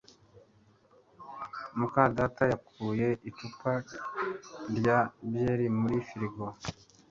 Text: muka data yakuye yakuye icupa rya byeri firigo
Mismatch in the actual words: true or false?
true